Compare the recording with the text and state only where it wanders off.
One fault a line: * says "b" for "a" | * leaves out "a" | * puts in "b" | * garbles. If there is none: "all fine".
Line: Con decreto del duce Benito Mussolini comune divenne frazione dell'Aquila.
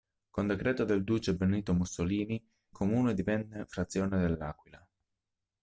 all fine